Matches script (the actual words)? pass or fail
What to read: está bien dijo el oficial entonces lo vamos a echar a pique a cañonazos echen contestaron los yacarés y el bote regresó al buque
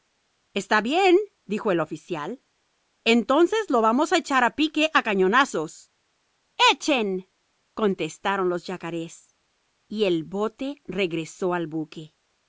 pass